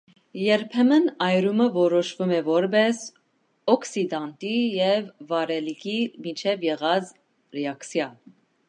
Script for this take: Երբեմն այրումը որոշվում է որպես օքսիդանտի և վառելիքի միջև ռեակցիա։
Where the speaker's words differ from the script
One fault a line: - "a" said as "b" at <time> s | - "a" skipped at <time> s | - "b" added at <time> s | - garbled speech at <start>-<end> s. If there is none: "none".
- "եղած" added at 6.7 s